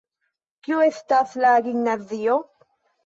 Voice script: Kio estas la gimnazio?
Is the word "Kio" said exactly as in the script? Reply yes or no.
yes